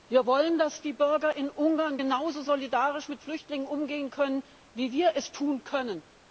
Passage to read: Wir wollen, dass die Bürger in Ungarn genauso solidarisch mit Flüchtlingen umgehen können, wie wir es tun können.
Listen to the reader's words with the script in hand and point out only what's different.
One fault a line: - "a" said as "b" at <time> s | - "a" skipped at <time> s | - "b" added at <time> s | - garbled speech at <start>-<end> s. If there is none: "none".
none